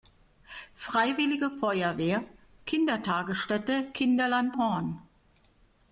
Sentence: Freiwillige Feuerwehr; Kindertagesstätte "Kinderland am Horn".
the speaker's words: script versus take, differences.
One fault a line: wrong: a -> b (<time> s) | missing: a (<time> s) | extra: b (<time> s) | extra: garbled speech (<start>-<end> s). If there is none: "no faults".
missing: am (4.6 s)